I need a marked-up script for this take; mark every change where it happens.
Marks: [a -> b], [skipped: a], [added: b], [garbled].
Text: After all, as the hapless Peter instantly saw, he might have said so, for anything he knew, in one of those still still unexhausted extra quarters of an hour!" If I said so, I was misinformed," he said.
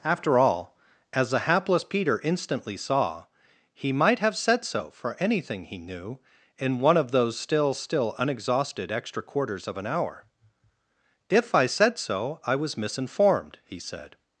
After all, as the hapless Peter instantly saw, he might have said so, for anything he knew, in one of those still still unexhausted extra quarters of an hour!" If I said so, I was misinformed," he said.